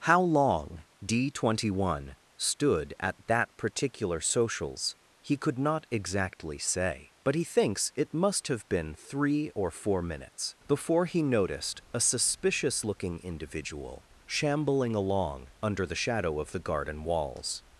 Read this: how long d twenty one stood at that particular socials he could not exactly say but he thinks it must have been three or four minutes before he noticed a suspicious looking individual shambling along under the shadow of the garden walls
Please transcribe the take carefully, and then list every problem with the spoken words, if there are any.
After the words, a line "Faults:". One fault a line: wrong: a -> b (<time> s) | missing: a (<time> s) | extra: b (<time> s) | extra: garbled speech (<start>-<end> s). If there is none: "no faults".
how long d twenty one stood at that particular socials he could not exactly say but he thinks it must have been three or four minutes before he noticed a suspicious looking individual shambling along under the shadow of the garden walls
Faults:
no faults